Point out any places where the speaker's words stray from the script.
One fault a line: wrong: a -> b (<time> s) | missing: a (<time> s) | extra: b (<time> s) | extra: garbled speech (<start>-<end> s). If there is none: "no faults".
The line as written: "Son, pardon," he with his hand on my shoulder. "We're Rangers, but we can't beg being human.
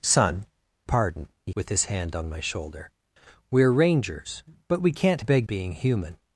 no faults